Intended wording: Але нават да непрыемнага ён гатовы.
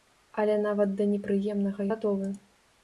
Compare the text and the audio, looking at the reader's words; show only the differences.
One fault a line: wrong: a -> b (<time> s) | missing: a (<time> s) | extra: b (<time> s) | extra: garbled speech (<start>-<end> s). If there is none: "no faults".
missing: ён (1.8 s)